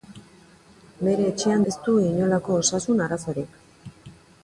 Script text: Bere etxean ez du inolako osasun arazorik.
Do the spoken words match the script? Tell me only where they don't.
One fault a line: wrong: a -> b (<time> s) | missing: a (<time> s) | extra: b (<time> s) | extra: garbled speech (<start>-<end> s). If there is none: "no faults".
no faults